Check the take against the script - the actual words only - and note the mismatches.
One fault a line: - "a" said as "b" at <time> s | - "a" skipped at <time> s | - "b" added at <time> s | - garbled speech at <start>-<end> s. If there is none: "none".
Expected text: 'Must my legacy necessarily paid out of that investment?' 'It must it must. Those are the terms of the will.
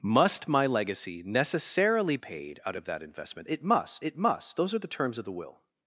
none